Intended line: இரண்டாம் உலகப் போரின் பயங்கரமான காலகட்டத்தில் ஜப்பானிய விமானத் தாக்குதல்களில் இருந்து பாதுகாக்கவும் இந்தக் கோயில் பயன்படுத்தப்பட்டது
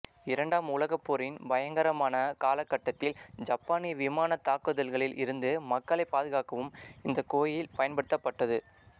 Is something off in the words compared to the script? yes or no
yes